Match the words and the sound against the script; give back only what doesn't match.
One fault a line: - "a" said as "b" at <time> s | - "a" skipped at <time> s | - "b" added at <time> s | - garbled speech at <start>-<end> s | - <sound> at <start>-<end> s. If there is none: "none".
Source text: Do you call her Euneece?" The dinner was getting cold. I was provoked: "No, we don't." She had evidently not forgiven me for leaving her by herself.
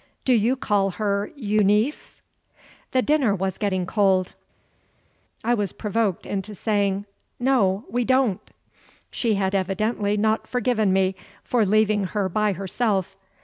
- "into saying" added at 6.3 s